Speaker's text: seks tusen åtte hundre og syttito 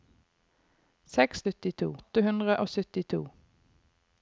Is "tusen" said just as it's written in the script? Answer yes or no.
no